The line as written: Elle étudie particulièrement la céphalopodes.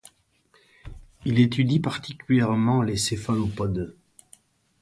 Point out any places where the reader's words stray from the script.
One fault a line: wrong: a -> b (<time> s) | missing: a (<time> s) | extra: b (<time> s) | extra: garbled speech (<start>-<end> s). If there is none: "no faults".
wrong: Elle -> Il (1.2 s)
wrong: la -> les (2.8 s)